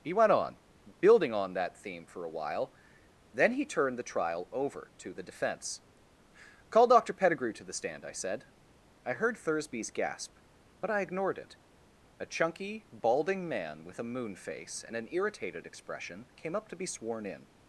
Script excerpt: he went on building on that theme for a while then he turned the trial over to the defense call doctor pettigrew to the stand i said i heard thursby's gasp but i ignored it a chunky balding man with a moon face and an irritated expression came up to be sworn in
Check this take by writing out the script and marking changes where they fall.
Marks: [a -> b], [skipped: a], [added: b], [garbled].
he went on building on that theme for a while then he turned the trial over to the defense call doctor pettigrew to the stand i said i heard thursby's gasp but i ignored it a chunky balding man with a moon face and an irritated expression came up to be sworn in